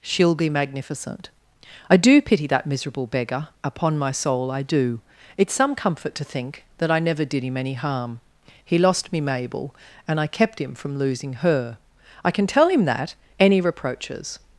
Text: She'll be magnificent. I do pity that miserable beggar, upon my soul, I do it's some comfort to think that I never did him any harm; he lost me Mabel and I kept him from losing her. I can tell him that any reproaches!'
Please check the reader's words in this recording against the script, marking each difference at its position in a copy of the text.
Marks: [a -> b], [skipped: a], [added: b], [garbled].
She'll be magnificent. I do pity that miserable beggar, upon my soul, I do it's some comfort to think that I never did him any harm; he lost me Mabel and I kept him from losing her. I can tell him that any reproaches!'